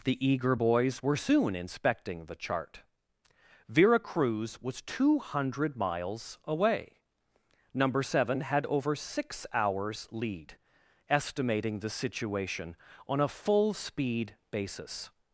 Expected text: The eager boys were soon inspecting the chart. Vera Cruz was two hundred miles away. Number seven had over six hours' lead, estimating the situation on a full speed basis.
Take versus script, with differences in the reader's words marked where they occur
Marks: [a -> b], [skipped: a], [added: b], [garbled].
The eager boys were soon inspecting the chart. Vera Cruz was two hundred miles away. Number seven had over six hours' lead, estimating the situation on a full speed basis.